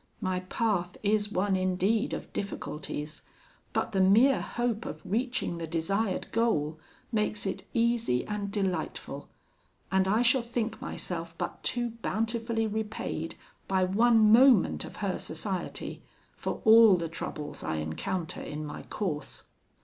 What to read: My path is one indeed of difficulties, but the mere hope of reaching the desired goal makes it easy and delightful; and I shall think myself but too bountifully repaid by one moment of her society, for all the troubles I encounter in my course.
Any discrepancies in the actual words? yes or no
no